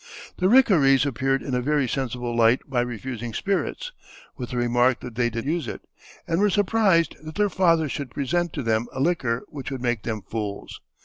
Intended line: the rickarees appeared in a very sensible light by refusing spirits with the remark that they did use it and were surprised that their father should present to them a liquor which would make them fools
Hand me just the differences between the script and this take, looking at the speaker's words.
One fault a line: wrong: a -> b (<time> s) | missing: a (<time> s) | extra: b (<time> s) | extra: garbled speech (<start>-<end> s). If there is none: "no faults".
no faults